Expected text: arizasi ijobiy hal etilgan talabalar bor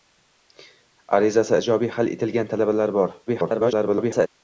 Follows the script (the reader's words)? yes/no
no